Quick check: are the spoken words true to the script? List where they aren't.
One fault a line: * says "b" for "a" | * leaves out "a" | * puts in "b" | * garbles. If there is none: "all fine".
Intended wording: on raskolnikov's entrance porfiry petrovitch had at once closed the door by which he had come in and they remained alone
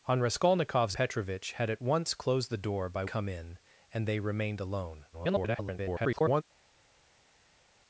* leaves out "entrance porfiry"
* leaves out "which he had"
* garbles